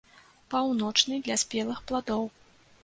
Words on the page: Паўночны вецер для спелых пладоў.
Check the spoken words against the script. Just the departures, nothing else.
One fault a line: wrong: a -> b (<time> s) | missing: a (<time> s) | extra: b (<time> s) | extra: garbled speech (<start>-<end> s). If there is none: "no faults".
missing: вецер (1.2 s)